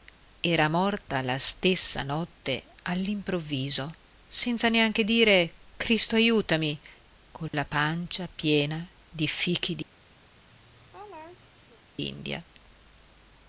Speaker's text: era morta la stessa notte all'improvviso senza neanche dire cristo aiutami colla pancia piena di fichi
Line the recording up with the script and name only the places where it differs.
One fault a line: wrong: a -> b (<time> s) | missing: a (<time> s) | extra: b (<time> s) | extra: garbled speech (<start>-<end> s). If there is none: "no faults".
no faults